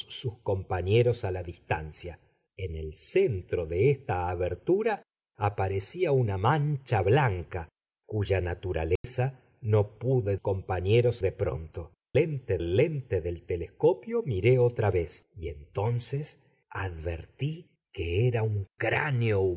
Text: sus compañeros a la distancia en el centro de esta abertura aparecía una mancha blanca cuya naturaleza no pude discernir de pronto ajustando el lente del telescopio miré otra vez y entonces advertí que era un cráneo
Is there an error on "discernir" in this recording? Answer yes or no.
yes